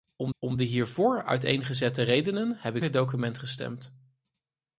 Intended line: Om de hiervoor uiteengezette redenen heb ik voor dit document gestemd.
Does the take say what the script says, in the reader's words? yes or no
no